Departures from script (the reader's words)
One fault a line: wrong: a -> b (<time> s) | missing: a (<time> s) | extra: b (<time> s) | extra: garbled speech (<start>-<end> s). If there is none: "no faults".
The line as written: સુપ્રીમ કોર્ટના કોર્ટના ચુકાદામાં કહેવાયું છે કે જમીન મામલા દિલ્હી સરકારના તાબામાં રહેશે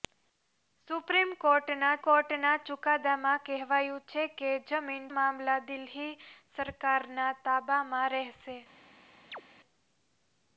no faults